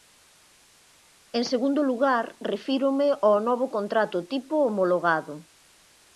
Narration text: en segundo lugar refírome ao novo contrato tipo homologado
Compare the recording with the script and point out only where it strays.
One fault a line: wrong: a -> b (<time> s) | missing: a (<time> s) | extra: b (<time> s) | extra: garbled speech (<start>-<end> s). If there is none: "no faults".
no faults